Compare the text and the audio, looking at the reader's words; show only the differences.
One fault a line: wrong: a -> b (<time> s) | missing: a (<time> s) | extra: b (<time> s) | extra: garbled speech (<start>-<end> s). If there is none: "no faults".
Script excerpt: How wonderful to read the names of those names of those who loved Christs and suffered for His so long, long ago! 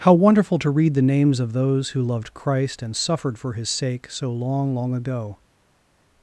missing: names of those (1.9 s)
wrong: Christs -> Christ (2.3 s)
extra: sake (3.7 s)